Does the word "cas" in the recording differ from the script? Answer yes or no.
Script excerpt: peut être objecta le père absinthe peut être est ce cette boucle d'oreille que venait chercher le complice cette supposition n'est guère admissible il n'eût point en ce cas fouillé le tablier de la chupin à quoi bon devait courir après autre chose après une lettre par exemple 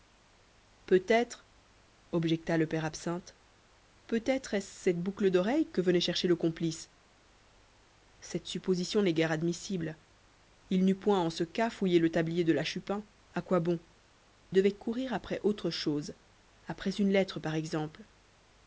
no